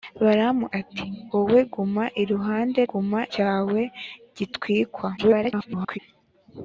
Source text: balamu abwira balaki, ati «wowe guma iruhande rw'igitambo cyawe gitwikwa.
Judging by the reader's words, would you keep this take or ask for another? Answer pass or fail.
fail